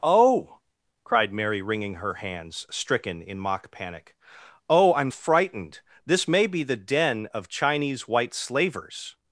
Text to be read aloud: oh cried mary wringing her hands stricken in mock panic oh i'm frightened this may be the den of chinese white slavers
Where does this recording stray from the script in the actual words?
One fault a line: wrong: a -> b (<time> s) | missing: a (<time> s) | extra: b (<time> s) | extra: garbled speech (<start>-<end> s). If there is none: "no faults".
no faults